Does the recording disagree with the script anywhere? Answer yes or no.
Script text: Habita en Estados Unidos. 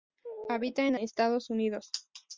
no